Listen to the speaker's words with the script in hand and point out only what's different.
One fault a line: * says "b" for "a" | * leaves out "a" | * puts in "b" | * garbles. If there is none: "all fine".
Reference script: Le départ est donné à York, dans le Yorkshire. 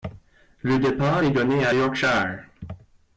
* leaves out "York dans le"